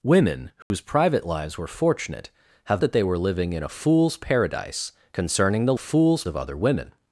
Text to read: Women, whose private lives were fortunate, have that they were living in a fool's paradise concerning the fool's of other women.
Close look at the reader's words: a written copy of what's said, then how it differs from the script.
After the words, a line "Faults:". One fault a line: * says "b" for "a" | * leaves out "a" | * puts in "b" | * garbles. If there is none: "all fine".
Women, whose private lives were fortunate, have that they were living in a fool's paradise concerning the fool's of other women.
Faults:
all fine